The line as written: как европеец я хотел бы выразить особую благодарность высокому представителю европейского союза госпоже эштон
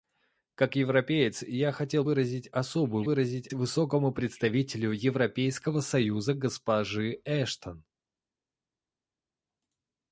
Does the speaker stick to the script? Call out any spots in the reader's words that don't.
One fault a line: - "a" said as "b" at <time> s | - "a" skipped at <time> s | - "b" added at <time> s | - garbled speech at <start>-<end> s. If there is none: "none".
- "бы" skipped at 2.0 s
- "благодарность" said as "выразить" at 3.0 s